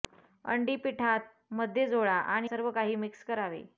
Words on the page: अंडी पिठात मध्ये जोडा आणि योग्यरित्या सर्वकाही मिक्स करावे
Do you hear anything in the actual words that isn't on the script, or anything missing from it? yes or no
yes